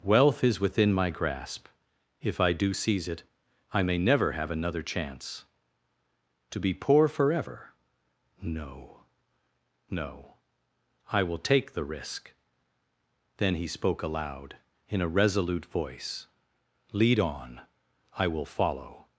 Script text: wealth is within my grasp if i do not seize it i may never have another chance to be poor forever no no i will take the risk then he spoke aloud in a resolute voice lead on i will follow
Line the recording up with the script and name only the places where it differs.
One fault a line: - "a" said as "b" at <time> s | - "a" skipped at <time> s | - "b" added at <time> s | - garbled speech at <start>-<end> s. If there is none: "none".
- "not" skipped at 2.7 s